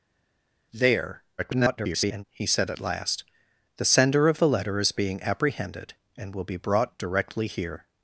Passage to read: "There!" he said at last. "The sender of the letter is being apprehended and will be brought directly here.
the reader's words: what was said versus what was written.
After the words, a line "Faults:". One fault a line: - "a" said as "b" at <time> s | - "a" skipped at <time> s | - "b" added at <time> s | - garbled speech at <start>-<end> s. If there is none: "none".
"There!" [garbled] he said at last. "The sender of the letter is being apprehended and will be brought directly here.
Faults:
- garbled speech at 1.4-2.2 s